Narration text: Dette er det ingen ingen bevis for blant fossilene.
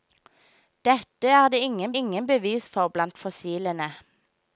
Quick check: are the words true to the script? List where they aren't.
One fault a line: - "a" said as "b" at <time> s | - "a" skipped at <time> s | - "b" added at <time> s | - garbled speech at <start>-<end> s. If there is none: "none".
none